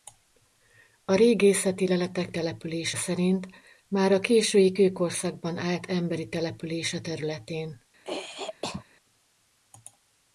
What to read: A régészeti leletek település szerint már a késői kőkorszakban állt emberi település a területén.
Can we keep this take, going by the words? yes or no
yes